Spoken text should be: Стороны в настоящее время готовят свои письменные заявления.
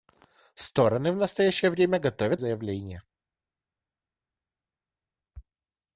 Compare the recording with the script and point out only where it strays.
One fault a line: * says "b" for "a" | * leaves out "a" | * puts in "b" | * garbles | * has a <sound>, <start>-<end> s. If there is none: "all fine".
* leaves out "свои письменные"